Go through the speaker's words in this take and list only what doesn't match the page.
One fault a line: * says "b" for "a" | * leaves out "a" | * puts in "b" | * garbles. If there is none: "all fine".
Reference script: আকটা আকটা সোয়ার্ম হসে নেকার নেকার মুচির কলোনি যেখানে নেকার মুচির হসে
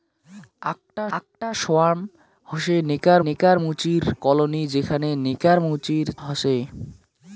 all fine